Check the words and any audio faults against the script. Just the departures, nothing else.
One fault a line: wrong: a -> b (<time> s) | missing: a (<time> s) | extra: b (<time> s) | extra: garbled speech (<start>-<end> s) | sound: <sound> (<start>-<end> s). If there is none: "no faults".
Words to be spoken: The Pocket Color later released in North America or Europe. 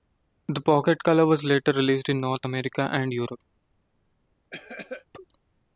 extra: was (1.3 s)
wrong: or -> and (2.9 s)
sound: cough (4.5-5.1 s)